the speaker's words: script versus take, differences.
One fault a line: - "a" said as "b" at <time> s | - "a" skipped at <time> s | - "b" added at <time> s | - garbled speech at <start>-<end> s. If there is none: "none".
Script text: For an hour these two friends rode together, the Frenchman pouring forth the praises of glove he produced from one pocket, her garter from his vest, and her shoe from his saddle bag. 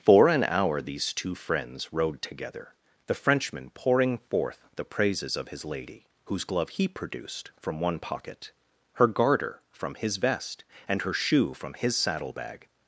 - "his lady whose" added at 5.5 s